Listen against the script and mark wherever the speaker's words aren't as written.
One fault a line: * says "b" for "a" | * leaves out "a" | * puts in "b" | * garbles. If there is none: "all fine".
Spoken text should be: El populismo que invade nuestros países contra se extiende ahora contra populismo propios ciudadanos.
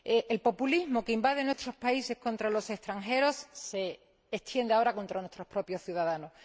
* puts in "los extranjeros"
* says "nuestros" for "populismo"